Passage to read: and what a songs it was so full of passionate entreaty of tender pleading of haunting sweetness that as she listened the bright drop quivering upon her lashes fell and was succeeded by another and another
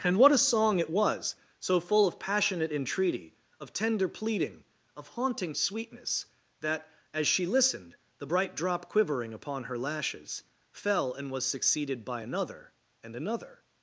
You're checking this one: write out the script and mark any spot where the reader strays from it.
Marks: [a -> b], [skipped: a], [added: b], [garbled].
and what a [songs -> song] it was so full of passionate entreaty of tender pleading of haunting sweetness that as she listened the bright drop quivering upon her lashes fell and was succeeded by another and another